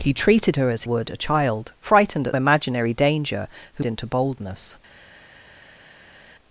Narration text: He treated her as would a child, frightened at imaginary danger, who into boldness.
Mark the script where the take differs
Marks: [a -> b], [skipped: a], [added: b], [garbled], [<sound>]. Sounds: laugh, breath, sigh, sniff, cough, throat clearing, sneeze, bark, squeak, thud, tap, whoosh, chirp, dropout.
He treated her as would a child, frightened at imaginary danger, who into boldness.